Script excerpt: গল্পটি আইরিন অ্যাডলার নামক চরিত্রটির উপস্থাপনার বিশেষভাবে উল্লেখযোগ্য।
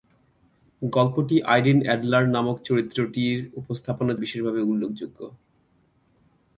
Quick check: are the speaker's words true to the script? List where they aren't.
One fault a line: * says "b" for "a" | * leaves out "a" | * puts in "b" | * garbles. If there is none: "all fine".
all fine